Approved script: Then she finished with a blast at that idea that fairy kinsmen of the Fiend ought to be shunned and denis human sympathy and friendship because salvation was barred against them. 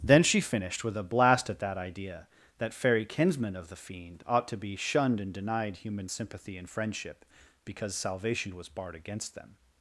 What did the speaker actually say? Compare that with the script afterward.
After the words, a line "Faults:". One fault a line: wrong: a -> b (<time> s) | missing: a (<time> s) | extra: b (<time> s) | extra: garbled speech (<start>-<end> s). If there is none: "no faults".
Then she finished with a blast at that idea that fairy kinsmen of the Fiend ought to be shunned and denied human sympathy and friendship because salvation was barred against them.
Faults:
wrong: denis -> denied (5.3 s)